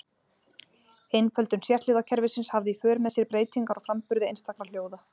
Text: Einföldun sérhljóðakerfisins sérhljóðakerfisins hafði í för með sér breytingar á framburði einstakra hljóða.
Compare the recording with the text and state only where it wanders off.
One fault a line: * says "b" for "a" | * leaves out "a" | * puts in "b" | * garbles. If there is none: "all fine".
* leaves out "sérhljóðakerfisins"